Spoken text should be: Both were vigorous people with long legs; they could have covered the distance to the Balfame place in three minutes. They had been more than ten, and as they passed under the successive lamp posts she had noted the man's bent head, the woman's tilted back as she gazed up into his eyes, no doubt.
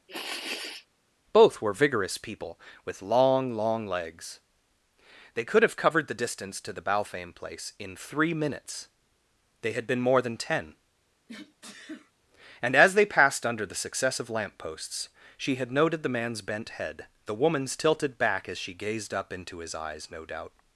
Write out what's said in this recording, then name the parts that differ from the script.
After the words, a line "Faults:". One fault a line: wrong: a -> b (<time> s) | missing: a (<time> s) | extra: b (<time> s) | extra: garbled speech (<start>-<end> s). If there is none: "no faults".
Both were vigorous people with long long legs; they could have covered the distance to the Balfame place in three minutes. They had been more than ten, and as they passed under the successive lamp posts she had noted the man's bent head, the woman's tilted back as she gazed up into his eyes, no doubt.
Faults:
extra: long (3.5 s)